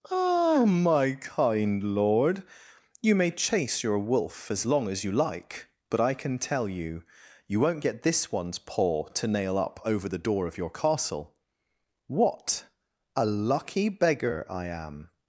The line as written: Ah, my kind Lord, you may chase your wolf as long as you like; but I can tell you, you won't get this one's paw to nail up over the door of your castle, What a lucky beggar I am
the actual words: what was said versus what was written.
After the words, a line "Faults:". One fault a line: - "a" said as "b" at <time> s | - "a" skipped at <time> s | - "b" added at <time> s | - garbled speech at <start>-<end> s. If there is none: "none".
Ah, my kind Lord, you may chase your wolf as long as you like; but I can tell you, you won't get this one's paw to nail up over the door of your castle, What a lucky beggar I am
Faults:
none